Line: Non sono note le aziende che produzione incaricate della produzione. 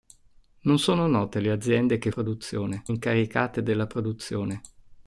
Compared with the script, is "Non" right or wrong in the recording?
right